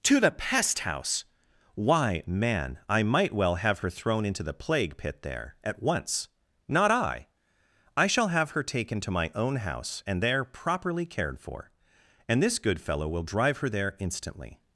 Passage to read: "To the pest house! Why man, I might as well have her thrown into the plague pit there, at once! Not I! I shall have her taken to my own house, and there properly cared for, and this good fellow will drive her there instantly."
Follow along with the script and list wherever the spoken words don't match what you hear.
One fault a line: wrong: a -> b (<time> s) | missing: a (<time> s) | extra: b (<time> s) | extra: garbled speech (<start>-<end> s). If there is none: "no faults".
missing: as (3.3 s)